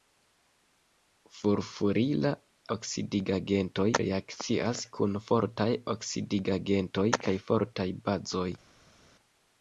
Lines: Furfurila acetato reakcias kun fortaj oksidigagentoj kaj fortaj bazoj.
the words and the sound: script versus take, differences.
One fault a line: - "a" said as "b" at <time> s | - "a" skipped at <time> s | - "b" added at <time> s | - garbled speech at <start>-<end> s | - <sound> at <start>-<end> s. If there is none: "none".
- "acetato" said as "oksidigagentoj" at 2.8 s